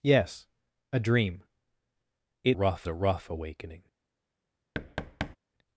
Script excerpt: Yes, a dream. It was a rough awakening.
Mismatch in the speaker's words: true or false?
true